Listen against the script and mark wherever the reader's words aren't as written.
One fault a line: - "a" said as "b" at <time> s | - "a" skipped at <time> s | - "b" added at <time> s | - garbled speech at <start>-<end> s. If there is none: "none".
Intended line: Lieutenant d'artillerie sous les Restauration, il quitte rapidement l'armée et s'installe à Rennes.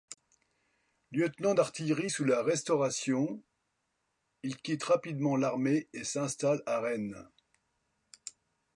- "les" said as "la" at 2.2 s